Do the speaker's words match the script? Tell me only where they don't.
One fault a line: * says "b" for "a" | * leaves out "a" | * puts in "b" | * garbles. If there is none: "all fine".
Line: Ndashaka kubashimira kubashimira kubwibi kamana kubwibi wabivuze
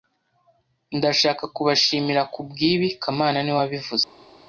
* leaves out "kubashimira"
* says "niwe" for "kubwibi"